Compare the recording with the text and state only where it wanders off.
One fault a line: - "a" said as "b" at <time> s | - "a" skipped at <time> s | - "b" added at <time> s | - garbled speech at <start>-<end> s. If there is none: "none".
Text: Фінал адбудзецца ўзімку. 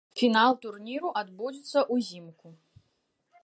- "турніру" added at 0.6 s